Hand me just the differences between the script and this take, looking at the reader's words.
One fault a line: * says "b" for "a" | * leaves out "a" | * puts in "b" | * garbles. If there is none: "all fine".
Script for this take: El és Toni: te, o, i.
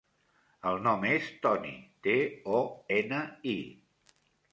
* puts in "nom"
* puts in "ena"